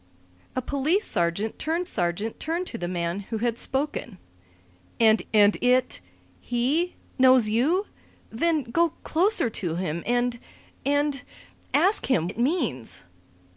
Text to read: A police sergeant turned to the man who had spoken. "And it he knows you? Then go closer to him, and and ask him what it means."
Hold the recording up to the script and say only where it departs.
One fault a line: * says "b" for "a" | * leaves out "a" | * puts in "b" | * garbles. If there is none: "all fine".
* puts in "sergeant turned"
* puts in "and"
* leaves out "what"